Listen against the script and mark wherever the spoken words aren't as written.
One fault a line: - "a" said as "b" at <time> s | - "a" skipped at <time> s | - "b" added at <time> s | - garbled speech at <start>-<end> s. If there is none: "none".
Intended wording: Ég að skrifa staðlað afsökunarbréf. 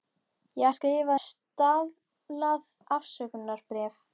none